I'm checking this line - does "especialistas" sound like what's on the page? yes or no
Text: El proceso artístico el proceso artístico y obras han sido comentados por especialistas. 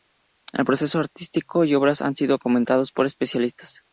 yes